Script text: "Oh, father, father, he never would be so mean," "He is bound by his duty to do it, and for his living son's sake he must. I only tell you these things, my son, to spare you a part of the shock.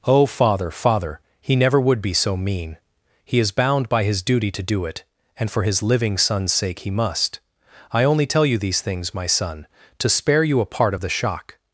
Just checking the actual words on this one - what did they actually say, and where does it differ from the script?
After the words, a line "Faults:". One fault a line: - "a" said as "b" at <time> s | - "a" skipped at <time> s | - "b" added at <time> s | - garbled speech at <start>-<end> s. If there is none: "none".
"Oh, father, father, he never would be so mean," "He is bound by his duty to do it, and for his living son's sake he must. I only tell you these things, my son, to spare you a part of the shock.
Faults:
none